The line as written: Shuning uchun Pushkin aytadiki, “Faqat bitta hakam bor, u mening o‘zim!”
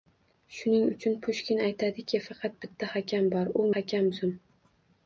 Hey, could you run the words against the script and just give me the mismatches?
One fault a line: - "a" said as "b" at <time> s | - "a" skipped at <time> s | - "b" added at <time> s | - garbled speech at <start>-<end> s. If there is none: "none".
- "mening" said as "hakam" at 3.8 s